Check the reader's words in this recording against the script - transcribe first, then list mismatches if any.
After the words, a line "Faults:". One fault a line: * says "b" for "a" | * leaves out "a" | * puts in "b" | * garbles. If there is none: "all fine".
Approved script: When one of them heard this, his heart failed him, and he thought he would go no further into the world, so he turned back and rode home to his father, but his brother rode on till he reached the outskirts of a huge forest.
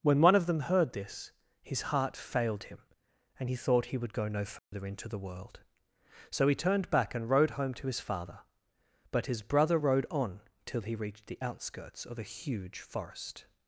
When one of them heard this, his heart failed him, and he thought he would go no further into the world, so he turned back and rode home to his father, but his brother rode on till he reached the outskirts of a huge forest.
Faults:
all fine